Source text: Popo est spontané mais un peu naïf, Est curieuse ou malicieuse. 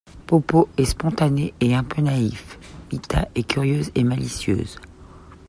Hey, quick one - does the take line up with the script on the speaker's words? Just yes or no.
no